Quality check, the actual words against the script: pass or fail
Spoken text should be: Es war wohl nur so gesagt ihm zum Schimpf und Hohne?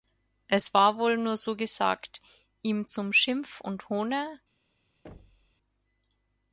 pass